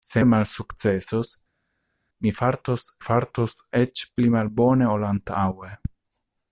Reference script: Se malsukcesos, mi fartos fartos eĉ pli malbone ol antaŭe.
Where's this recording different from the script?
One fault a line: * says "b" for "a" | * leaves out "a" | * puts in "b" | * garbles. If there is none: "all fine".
all fine